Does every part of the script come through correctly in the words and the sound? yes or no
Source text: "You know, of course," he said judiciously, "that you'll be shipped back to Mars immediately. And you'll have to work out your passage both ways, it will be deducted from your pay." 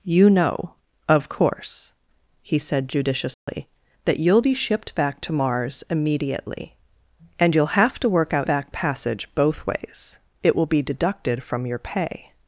no